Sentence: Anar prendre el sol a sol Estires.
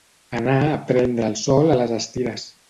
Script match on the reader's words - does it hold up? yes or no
no